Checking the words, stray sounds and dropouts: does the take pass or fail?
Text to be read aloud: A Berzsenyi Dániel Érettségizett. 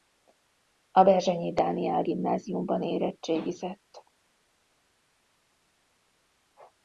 fail